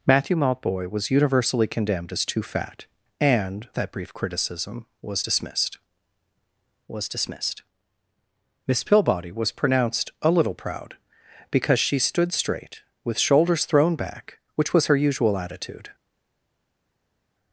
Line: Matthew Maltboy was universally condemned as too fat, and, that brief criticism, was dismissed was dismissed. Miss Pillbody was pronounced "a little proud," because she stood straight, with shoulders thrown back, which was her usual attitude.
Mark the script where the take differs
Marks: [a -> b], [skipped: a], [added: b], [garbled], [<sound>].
Matthew Maltboy was universally condemned as too fat, and, that brief criticism, was dismissed was dismissed. Miss Pillbody was pronounced "a little proud," because she stood straight, with shoulders thrown back, which was her usual attitude.